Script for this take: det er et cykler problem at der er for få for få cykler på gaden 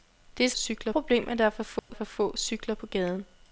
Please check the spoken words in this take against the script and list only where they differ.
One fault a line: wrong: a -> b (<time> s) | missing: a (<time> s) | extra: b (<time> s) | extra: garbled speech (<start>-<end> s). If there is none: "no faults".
no faults